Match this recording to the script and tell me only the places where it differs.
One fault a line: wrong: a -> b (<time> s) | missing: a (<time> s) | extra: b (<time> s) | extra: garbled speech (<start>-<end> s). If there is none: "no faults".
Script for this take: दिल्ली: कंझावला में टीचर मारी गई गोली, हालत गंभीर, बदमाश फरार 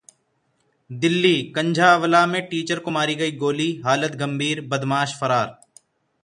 extra: को (2.8 s)